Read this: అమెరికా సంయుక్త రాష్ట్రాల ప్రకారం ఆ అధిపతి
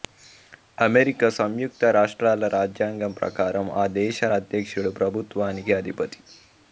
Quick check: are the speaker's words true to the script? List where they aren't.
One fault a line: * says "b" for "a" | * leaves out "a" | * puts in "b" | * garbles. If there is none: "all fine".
* puts in "రాజ్యాంగం"
* puts in "దేశ అధ్యక్షుడు ప్రభుత్వానికి"